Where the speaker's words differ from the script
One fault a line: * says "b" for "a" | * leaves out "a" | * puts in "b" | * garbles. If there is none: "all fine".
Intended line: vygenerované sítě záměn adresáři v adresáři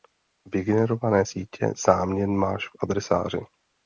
* says "máš" for "adresáři"